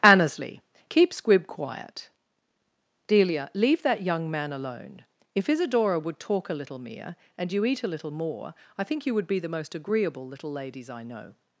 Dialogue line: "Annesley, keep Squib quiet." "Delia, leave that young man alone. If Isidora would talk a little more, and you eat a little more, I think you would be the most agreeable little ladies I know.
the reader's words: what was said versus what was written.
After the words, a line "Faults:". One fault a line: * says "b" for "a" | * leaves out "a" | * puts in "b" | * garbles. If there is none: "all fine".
"Annesley, keep Squib quiet." "Delia, leave that young man alone. If Isidora would talk a little mere, and you eat a little more, I think you would be the most agreeable little ladies I know.
Faults:
* says "mere" for "more"